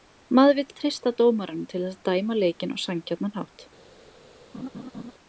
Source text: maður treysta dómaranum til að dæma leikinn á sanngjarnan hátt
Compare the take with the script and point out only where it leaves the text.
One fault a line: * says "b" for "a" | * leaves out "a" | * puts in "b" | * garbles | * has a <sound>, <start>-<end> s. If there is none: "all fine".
* puts in "vill"
* puts in "þess"
* has a laugh, 4.5-5.1 s